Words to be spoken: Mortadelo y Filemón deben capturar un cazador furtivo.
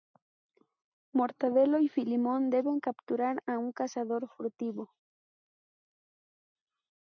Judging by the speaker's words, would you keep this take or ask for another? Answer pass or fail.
fail